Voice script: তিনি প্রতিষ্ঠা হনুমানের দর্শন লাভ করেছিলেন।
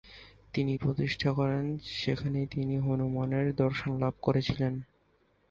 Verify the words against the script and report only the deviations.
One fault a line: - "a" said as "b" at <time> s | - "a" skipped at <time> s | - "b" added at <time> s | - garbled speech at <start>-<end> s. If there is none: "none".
- "করেন সেখানেই তিনি" added at 1.3 s